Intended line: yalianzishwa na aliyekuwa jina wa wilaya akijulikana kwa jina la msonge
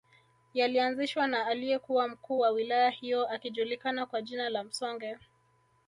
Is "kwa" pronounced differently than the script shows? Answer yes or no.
no